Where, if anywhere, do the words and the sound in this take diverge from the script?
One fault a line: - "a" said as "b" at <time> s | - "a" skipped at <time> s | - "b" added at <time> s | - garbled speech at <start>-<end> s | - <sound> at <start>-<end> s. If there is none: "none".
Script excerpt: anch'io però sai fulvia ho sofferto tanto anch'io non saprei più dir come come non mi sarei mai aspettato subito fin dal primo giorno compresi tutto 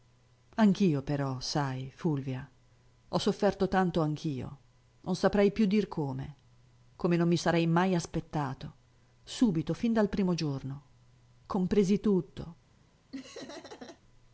- laugh at 13.1-14.0 s